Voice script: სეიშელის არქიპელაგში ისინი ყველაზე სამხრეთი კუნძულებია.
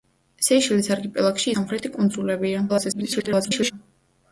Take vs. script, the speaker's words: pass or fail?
fail